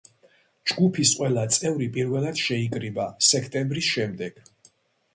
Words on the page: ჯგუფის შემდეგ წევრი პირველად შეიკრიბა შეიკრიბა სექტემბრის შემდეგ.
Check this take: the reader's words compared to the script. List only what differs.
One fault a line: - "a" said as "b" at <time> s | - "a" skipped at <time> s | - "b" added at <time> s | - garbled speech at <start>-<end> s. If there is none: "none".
- "შემდეგ" said as "ყველა" at 1.2 s
- "შეიკრიბა" skipped at 3.1 s